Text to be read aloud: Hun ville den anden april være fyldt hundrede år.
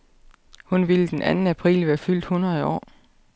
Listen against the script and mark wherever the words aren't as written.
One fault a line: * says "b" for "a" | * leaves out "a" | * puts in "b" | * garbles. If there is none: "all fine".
all fine